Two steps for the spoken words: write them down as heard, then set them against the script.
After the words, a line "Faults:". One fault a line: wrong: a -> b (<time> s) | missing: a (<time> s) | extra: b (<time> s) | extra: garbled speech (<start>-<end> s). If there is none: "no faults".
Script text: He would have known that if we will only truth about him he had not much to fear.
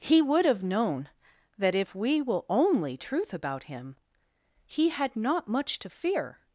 He would have known that if we will only truth about him he had not much to fear.
Faults:
no faults